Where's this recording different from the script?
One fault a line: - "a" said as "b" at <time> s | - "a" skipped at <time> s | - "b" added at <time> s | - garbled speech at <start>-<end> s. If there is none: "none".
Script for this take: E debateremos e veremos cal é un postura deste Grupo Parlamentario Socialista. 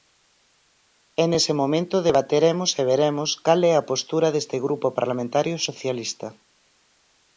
- "nese momento" added at 1.3 s
- "un" said as "a" at 3.8 s